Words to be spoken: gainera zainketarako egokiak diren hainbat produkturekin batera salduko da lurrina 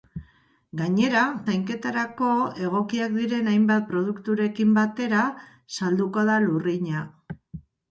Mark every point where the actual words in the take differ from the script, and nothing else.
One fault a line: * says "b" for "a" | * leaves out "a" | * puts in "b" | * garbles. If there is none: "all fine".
all fine